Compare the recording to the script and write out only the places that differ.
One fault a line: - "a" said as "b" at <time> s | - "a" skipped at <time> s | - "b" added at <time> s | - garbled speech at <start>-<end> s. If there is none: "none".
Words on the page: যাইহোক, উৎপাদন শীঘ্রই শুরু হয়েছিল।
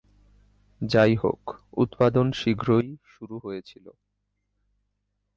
none